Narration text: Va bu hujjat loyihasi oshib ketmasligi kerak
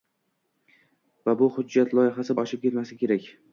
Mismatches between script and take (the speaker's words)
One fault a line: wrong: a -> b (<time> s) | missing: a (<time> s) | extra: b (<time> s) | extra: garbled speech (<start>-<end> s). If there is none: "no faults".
no faults